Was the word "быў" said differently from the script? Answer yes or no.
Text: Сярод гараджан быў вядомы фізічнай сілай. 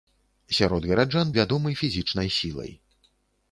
yes